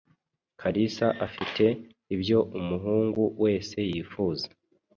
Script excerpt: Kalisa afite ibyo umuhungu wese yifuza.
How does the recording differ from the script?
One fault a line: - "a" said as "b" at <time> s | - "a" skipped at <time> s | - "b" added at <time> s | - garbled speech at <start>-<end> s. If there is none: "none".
none